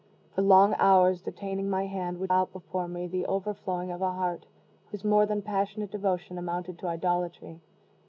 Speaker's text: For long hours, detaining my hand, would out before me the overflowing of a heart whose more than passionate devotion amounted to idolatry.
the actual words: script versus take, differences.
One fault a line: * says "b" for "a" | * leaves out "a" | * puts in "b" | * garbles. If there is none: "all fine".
all fine